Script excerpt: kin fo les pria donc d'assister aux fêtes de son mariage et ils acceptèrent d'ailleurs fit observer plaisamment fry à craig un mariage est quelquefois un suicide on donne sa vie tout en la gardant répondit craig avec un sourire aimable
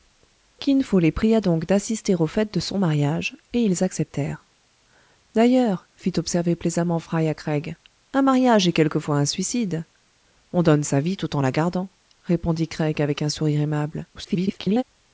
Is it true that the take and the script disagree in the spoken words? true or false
true